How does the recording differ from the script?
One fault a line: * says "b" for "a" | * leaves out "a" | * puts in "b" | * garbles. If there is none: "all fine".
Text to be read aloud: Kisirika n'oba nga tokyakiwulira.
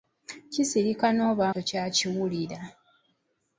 * leaves out "nga"